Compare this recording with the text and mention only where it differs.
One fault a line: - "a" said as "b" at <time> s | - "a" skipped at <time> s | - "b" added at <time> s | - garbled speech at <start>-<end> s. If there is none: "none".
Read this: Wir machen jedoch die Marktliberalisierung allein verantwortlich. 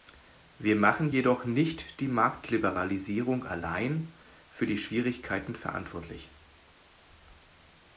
- "nicht" added at 1.4 s
- "für die Schwierigkeiten" added at 4.5 s